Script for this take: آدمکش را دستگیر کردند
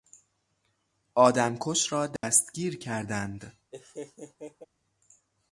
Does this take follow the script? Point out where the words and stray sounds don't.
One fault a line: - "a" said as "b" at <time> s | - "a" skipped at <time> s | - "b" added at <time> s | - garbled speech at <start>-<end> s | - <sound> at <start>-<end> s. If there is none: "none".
- dropout at 2.2-2.2 s
- laugh at 3.7-4.7 s